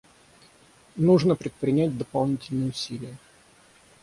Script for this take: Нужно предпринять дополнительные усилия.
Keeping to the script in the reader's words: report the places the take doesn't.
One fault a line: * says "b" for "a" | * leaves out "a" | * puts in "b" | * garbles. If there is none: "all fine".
all fine